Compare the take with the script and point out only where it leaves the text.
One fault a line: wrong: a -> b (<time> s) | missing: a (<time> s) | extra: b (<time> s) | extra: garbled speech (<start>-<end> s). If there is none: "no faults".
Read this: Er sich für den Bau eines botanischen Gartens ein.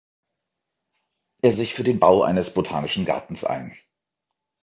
no faults